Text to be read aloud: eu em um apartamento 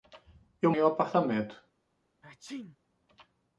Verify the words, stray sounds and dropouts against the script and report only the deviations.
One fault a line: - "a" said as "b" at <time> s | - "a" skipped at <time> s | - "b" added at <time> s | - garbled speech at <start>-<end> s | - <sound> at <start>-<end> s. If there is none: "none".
- sneeze at 2.2-2.8 s